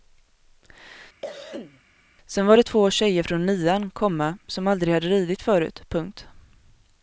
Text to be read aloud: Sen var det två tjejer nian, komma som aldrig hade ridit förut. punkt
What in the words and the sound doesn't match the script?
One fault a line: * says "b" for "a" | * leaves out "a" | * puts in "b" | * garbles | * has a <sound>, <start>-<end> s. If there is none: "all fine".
* has a cough, 1.2-1.8 s
* puts in "från"